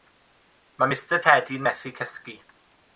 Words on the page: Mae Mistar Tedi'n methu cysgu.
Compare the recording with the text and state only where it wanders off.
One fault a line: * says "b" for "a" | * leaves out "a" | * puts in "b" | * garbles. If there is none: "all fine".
all fine